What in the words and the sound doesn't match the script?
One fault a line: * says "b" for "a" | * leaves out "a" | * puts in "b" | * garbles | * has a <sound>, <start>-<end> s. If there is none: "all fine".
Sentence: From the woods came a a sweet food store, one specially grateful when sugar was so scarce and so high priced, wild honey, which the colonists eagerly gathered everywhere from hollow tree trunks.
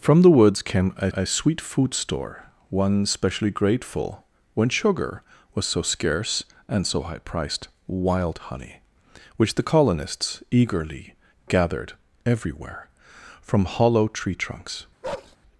* has a bark, 15.0-15.4 s